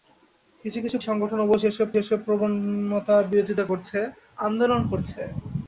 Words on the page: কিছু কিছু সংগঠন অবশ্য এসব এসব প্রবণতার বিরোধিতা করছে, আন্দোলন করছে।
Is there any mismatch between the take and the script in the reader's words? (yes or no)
no